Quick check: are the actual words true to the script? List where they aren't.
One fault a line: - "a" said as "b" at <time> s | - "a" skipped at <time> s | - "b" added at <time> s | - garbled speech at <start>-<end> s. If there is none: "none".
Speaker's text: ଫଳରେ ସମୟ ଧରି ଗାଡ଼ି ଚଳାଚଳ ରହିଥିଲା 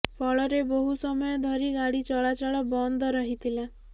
- "ବହୁ" added at 0.7 s
- "ବନ୍ଦ" added at 2.7 s